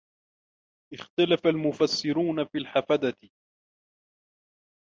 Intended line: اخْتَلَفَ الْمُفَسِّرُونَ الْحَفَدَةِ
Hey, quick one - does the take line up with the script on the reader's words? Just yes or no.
no